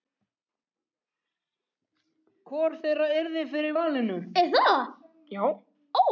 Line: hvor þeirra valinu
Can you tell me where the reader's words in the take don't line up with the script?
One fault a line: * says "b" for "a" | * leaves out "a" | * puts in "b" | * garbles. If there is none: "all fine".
* puts in "yrði fyrir"